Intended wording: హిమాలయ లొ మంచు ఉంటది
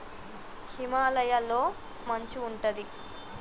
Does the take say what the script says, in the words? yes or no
yes